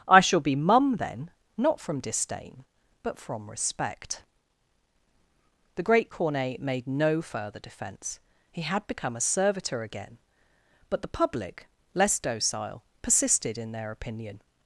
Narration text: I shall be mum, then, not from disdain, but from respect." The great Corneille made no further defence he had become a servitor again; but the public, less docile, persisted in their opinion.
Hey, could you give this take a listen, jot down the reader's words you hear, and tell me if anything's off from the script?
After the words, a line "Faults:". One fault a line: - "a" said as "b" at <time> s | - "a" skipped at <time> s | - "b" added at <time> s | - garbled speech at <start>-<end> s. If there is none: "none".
I shall be mum, then, not from disdain, but from respect." The great Corneille made no further defence he had become a servitor again; but the public, less docile, persisted in their opinion.
Faults:
none